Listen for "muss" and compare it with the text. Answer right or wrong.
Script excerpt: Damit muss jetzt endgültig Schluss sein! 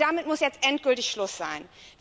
right